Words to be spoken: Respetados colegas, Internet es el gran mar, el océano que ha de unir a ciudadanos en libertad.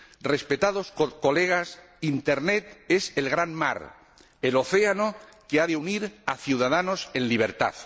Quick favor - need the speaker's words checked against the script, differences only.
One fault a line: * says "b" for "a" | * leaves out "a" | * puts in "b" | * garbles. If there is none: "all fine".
all fine